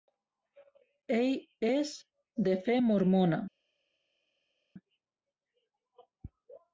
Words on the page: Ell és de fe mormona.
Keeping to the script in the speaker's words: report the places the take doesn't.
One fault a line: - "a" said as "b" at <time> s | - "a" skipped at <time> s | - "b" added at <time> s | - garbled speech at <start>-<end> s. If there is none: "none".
none